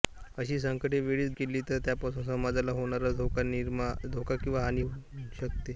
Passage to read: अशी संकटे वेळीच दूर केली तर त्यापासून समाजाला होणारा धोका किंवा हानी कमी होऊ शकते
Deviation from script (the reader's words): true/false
true